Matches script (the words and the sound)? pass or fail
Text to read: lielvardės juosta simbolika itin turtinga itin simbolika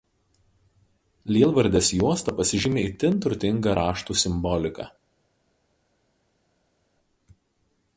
fail